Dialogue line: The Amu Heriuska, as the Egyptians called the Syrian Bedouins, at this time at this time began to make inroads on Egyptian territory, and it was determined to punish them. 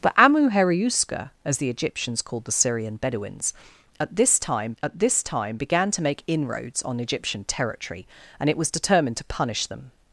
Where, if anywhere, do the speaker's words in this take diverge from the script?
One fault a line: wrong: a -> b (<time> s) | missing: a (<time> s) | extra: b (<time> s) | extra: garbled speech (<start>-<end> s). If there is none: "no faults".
no faults